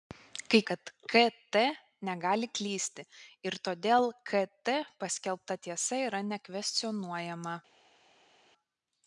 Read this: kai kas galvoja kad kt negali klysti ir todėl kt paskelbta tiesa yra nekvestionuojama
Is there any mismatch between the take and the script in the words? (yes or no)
yes